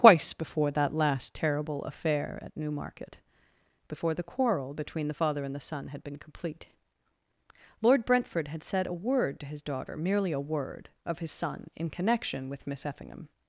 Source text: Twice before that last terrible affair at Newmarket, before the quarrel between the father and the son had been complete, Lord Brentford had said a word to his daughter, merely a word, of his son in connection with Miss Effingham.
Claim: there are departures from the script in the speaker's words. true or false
false